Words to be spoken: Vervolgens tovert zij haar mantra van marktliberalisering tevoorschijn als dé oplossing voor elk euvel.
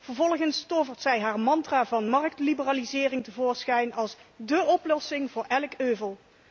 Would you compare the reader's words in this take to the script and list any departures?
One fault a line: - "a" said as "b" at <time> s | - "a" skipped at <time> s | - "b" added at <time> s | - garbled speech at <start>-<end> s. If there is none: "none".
none